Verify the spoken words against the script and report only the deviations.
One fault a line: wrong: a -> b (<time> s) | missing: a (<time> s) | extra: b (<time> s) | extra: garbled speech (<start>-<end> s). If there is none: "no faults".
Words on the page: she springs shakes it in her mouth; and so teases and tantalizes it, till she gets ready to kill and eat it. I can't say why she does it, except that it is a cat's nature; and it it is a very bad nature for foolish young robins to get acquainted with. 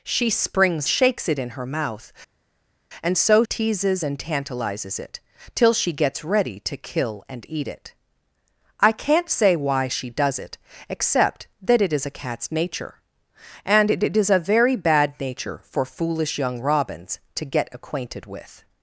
no faults